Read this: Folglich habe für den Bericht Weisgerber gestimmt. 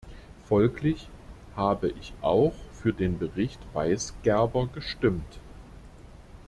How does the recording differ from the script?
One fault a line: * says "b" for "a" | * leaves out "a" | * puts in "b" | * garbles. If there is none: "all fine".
* puts in "ich auch"